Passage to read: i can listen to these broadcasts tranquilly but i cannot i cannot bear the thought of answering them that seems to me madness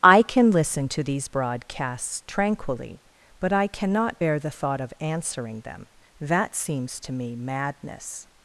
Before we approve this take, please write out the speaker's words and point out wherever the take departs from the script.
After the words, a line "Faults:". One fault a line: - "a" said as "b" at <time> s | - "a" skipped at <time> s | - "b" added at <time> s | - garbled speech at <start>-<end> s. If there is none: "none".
i can listen to these broadcasts tranquilly but i cannot bear the thought of answering them that seems to me madness
Faults:
- "i cannot" skipped at 4.2 s